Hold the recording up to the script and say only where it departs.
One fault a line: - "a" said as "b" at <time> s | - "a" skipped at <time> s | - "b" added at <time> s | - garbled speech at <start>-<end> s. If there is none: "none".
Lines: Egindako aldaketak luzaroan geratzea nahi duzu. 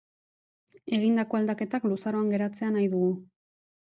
- "duzu" said as "dugu" at 3.0 s